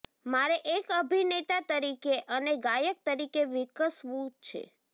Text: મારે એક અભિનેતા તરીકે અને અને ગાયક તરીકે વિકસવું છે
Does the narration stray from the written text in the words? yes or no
yes